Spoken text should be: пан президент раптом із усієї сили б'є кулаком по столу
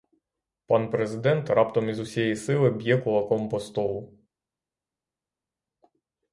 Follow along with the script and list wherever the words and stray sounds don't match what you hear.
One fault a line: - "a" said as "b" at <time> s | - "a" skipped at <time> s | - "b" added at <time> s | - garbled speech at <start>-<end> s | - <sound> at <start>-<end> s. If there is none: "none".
none